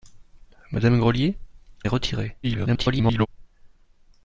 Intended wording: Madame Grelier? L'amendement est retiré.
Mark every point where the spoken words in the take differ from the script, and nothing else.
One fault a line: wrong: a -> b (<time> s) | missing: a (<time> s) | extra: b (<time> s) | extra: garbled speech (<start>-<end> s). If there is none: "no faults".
missing: L'amendement (1.4 s)
extra: garbled speech (2.4-3.3 s)